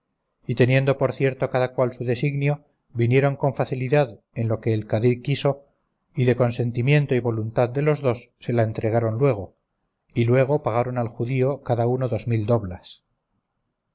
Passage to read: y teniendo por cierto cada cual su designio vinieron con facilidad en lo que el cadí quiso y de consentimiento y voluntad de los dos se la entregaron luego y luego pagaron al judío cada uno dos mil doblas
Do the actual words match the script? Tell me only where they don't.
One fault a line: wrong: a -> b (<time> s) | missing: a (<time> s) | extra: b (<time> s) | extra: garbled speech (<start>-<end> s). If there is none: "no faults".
no faults